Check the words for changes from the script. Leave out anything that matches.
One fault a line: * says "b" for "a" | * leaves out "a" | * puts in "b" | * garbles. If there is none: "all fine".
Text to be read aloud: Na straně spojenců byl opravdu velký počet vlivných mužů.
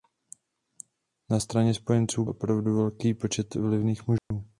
* leaves out "byl"